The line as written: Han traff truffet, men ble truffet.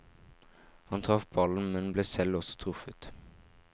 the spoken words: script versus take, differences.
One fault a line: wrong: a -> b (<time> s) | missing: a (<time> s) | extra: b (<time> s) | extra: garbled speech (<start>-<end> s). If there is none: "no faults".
wrong: truffet -> ballen (1.4 s)
extra: selv også (2.1 s)